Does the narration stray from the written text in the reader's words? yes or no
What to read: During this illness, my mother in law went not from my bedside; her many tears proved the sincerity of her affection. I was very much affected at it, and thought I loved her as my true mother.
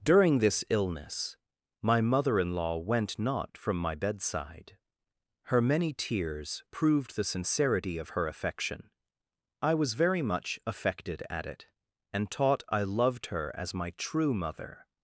yes